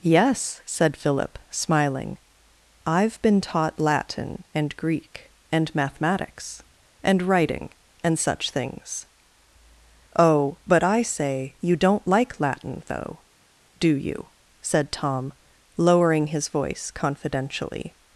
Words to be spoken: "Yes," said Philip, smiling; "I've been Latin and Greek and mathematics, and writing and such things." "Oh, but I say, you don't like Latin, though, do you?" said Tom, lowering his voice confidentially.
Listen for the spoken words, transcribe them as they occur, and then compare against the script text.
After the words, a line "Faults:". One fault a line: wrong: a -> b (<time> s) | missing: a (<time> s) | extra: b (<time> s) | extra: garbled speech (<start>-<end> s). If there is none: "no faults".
"Yes," said Philip, smiling; "I've been taught Latin and Greek and mathematics, and writing and such things." "Oh, but I say, you don't like Latin, though, do you?" said Tom, lowering his voice confidentially.
Faults:
extra: taught (3.4 s)